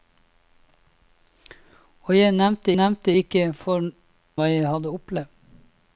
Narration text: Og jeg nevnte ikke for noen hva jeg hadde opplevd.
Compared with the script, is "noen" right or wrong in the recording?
wrong